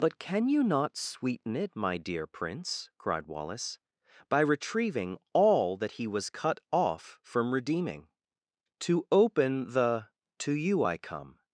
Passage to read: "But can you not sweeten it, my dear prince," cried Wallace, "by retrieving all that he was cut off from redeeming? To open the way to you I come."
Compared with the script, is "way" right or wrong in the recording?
wrong